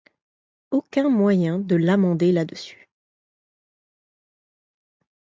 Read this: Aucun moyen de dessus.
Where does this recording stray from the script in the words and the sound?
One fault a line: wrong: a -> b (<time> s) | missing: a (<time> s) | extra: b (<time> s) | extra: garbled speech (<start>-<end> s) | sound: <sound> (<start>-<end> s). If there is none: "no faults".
extra: l'amender là (1.8 s)